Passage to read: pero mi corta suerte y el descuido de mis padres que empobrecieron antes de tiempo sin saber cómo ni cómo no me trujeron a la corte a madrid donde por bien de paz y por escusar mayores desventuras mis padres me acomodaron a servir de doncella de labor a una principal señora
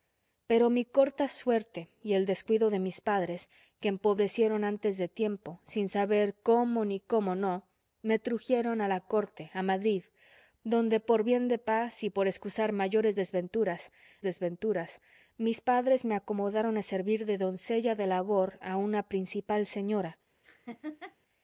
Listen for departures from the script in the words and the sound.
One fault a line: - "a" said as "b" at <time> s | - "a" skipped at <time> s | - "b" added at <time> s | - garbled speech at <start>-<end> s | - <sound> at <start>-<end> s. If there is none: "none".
- "desventuras" added at 14.2 s
- laugh at 20.4-21.2 s